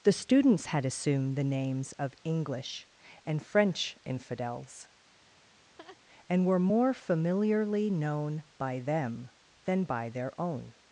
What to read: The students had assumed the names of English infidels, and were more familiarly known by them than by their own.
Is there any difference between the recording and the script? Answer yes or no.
yes